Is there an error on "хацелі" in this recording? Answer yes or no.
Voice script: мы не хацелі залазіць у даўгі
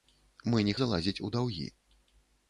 yes